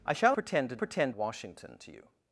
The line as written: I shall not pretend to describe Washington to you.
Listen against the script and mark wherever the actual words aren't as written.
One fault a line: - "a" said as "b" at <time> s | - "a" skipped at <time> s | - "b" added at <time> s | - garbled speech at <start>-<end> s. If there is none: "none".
- "not" skipped at 0.3 s
- "describe" said as "pretend" at 0.8 s